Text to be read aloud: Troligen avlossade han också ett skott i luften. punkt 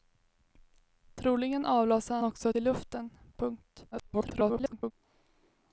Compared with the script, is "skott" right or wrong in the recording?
wrong